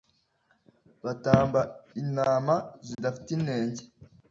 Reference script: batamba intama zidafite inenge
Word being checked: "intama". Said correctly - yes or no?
yes